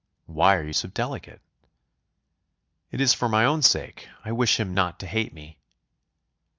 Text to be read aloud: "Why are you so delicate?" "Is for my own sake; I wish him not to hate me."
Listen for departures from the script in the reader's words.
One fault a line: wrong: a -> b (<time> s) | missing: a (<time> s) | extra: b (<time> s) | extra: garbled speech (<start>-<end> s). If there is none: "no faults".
extra: It (2.9 s)